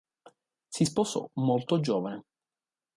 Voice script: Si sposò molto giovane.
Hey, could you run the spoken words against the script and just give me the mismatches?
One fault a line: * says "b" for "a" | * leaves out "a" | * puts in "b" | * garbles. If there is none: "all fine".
all fine